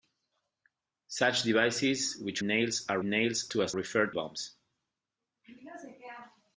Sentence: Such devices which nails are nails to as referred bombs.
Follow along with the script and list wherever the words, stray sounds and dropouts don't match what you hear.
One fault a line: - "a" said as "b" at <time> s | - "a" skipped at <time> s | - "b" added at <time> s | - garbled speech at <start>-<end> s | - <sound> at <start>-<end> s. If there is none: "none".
none